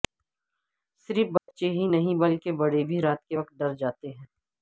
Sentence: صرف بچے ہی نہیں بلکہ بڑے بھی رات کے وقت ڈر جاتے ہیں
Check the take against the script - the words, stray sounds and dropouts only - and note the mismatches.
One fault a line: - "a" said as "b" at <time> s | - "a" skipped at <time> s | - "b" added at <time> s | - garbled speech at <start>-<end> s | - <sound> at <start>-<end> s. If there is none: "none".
- dropout at 1.4-1.5 s